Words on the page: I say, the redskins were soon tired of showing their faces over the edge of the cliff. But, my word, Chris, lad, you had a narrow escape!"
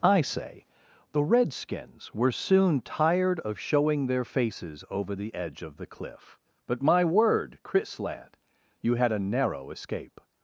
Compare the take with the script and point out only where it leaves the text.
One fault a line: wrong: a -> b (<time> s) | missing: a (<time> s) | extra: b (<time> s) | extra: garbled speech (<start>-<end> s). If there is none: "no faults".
no faults